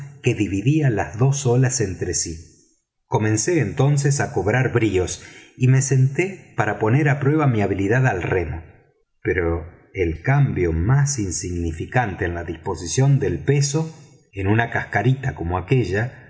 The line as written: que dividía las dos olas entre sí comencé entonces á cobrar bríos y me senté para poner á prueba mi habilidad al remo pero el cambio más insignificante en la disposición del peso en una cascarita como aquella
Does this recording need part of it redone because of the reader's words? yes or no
no